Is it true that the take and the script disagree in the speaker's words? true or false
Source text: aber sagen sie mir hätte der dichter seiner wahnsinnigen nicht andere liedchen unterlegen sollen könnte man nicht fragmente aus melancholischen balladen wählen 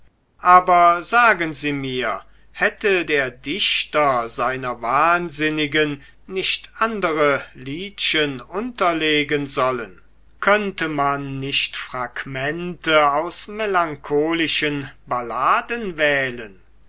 false